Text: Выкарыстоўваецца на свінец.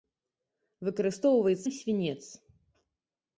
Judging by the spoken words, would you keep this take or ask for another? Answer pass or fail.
pass